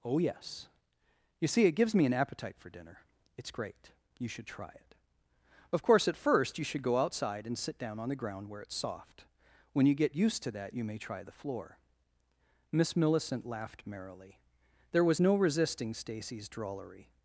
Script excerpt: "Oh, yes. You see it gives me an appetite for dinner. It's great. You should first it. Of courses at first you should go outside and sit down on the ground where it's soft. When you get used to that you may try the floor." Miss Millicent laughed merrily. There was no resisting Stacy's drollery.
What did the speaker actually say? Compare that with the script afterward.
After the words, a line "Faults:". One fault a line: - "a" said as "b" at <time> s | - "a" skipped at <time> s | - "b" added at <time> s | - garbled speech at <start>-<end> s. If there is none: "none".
"Oh, yes. You see it gives me an appetite for dinner. It's great. You should try it. Of course at first you should go outside and sit down on the ground where it's soft. When you get used to that you may try the floor." Miss Millicent laughed merrily. There was no resisting Stacy's drollery.
Faults:
- "first" said as "try" at 4.5 s
- "courses" said as "course" at 5.8 s